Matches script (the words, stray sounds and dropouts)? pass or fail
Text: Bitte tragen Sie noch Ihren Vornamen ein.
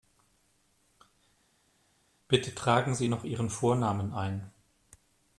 pass